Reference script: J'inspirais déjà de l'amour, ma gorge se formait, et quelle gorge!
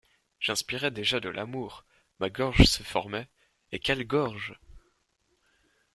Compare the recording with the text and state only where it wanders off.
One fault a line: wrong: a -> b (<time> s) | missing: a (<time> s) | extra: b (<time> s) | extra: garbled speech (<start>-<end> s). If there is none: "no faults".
no faults